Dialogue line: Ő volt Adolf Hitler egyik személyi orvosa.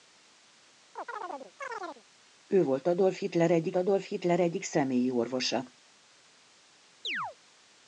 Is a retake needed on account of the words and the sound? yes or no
yes